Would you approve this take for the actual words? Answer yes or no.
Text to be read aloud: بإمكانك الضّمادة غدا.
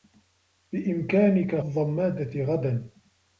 yes